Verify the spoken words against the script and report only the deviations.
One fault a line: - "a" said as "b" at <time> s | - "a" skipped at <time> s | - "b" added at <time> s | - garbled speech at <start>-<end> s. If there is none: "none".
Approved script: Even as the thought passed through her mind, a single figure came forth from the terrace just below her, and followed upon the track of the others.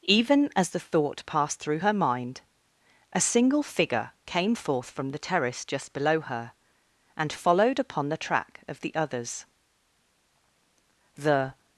- "The" added at 11.1 s